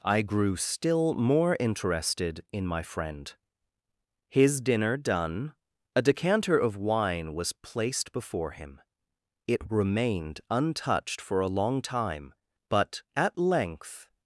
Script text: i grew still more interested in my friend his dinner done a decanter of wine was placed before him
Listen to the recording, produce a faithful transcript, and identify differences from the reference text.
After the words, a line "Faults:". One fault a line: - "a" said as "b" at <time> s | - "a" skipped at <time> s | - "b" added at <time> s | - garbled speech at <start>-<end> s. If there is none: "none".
i grew still more interested in my friend his dinner done a decanter of wine was placed before him it remained untouched for a long time but at length
Faults:
- "it remained untouched for a long time but at length" added at 9.4 s